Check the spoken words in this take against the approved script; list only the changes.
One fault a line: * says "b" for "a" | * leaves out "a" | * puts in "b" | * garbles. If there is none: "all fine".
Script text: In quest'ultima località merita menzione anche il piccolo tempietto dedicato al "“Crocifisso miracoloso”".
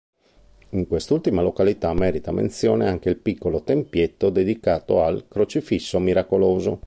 all fine